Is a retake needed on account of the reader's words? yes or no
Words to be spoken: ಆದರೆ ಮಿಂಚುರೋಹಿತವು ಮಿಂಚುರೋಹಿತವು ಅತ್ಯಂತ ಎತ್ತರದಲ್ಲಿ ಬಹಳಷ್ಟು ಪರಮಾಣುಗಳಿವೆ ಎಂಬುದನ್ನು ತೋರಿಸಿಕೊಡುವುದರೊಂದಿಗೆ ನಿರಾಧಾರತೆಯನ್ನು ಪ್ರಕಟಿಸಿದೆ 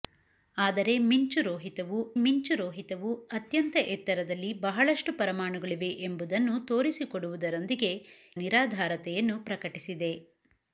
no